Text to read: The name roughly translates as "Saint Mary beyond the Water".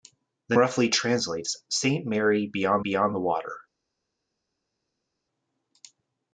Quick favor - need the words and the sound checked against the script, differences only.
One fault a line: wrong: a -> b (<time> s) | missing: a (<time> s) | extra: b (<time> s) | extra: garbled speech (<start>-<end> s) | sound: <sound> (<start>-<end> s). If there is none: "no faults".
missing: name (0.6 s)
missing: as (1.6 s)
extra: beyond (2.8 s)